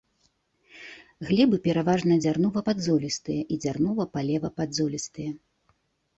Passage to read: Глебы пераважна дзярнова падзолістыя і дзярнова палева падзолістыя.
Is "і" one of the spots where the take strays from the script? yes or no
no